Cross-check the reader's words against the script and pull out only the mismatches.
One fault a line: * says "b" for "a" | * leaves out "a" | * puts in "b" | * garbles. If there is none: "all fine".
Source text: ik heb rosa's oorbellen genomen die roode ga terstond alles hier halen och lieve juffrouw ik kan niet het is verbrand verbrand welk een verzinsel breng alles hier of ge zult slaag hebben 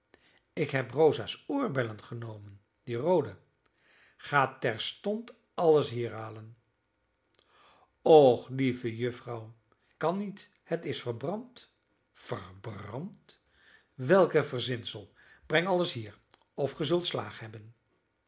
* leaves out "ik"